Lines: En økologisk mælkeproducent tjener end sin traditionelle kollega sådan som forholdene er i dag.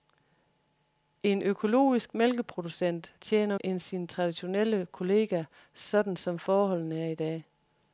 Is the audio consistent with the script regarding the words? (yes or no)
yes